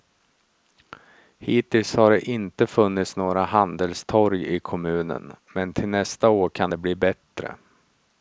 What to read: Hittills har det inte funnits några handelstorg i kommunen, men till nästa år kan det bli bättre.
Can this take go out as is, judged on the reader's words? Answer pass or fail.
pass